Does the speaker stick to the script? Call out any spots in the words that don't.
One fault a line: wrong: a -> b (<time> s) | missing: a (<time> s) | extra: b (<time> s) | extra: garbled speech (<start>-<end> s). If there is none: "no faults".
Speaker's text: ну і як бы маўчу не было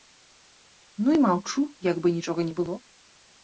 extra: маўчу (1.3 s)
wrong: маўчу -> нічога (2.2 s)